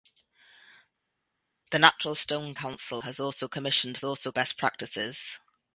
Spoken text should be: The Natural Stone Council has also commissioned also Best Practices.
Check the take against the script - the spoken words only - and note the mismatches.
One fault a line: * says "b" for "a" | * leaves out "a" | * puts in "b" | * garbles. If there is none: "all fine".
all fine